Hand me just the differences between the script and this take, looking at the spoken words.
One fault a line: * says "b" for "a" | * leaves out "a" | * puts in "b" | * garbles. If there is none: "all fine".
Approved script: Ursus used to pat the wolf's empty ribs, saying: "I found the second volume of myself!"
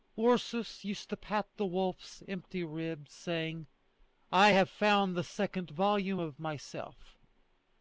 * puts in "have"